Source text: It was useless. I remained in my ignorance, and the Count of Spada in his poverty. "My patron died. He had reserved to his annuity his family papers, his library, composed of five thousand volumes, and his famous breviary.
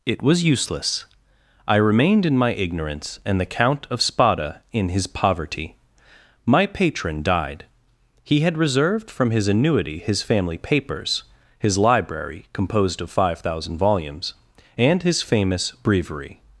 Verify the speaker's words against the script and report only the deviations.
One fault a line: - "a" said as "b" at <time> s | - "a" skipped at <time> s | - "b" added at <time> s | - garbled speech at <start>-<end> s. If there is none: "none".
- "to" said as "from" at 9.1 s